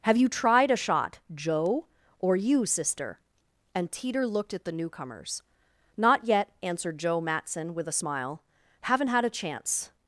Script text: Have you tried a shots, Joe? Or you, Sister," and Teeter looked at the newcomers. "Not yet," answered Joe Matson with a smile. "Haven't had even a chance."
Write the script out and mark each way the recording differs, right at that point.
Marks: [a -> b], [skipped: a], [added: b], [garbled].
Have you tried a [shots, -> shot] Joe? Or you, Sister," and Teeter looked at the newcomers. "Not yet," answered Joe Matson with a smile. "Haven't had [skipped: even] a chance."